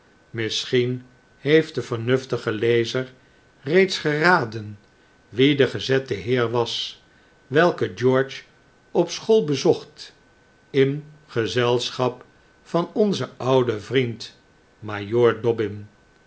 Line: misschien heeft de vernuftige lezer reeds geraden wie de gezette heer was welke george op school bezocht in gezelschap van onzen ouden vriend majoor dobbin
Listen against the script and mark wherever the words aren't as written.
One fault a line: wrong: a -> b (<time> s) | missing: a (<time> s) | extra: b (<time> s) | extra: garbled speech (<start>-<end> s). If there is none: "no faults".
no faults